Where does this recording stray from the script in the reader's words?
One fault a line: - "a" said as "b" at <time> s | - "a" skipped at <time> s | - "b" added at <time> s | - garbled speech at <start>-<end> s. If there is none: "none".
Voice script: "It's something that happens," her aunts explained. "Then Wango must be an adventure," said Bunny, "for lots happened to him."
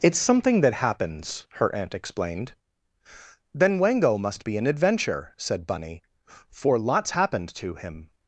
- "aunts" said as "aunt" at 1.8 s